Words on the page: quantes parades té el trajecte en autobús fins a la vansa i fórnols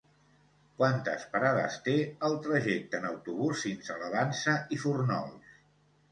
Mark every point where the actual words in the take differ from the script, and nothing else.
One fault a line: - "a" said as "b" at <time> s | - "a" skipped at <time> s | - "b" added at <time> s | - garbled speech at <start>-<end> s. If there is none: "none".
none